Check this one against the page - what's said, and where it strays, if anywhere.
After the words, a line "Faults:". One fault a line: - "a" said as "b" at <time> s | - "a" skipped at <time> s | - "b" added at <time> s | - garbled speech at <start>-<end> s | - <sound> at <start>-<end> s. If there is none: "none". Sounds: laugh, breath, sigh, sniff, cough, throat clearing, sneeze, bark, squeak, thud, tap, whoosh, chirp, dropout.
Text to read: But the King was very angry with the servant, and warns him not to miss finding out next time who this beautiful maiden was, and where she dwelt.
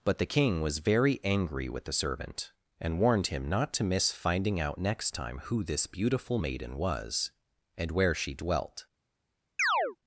But the King was very angry with the servant, and warned him not to miss finding out next time who this beautiful maiden was, and where she dwelt.
Faults:
- "warns" said as "warned" at 3.0 s
- chirp at 9.6-10.0 s